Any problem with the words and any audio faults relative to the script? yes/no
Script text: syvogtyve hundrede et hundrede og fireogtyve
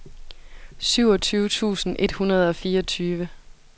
yes